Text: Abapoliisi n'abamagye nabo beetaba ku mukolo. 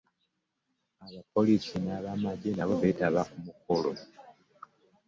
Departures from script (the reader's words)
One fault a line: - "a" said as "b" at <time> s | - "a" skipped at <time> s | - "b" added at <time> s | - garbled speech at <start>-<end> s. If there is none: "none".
none